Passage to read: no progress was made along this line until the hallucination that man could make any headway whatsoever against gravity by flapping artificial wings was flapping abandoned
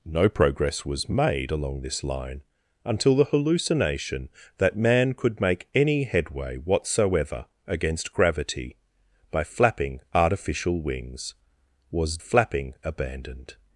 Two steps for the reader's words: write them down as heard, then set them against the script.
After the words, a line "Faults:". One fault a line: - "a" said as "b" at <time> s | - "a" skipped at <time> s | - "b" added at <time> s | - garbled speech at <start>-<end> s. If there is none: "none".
no progress was made along this line until the hallucination that man could make any headway whatsoever against gravity by flapping artificial wings was flapping abandoned
Faults:
none